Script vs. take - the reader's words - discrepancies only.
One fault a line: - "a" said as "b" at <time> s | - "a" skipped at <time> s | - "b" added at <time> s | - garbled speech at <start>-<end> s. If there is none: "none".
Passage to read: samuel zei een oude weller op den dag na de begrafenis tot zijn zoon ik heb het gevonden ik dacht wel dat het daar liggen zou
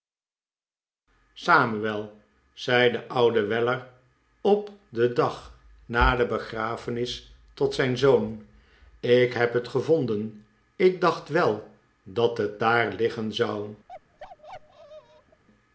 - "een" said as "de" at 2.9 s